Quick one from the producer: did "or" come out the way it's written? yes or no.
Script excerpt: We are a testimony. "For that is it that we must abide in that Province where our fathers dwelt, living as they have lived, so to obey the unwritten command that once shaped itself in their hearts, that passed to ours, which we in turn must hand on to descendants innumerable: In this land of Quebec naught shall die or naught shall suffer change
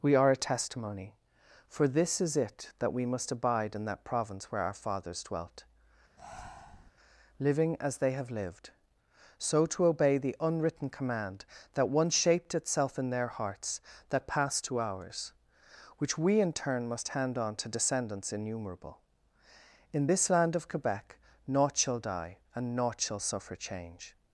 no